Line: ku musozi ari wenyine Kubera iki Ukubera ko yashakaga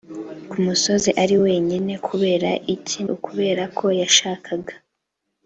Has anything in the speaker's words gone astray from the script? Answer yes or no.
no